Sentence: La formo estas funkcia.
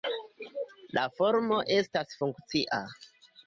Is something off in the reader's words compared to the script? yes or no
no